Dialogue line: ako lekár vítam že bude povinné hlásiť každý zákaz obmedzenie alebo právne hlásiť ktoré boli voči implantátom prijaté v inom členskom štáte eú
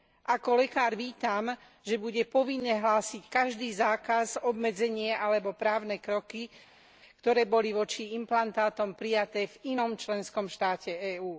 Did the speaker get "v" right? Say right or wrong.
right